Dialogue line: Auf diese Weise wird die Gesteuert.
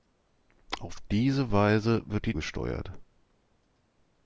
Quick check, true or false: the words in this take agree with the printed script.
true